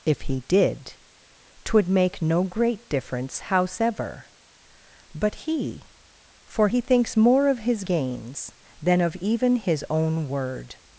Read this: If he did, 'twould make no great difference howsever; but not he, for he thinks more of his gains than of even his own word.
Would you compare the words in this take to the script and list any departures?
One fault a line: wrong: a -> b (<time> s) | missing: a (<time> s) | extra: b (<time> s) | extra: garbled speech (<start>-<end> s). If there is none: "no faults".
missing: not (5.3 s)